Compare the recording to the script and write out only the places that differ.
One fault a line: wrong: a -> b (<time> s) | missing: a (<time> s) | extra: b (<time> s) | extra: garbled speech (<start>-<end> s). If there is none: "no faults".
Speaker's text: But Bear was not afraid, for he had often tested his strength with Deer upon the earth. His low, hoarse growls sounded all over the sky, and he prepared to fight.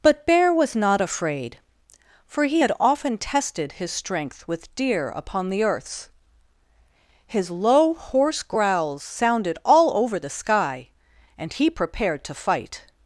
wrong: earth -> earths (5.6 s)